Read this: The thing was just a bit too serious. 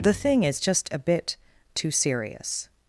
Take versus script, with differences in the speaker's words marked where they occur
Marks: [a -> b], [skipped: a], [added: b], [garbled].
The thing [was -> is] just a bit too serious.